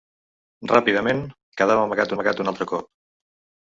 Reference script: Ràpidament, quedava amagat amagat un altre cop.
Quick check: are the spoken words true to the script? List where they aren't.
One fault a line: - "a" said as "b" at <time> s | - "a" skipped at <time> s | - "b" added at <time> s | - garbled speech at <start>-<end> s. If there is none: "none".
none